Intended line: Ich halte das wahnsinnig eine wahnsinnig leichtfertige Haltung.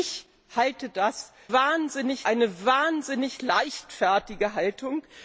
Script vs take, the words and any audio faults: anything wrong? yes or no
no